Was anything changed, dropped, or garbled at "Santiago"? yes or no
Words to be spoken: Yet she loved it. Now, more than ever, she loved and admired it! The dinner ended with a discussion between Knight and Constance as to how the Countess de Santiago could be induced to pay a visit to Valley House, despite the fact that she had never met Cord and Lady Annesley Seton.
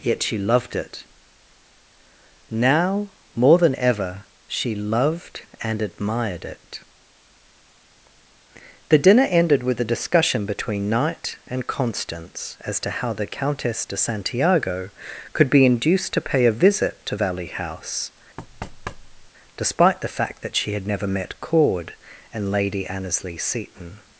no